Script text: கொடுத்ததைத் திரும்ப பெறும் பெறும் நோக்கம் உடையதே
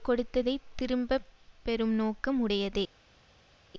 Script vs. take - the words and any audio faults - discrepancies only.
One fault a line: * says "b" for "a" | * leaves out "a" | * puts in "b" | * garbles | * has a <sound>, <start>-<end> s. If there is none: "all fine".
* leaves out "பெறும்"